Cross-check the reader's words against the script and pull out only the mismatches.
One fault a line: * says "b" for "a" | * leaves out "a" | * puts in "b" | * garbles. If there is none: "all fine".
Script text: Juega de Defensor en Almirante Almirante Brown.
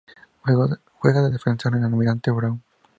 * leaves out "Almirante"